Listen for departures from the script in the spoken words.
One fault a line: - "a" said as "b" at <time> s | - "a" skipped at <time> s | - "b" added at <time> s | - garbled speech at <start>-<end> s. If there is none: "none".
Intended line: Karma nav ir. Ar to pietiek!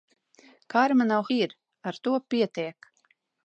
none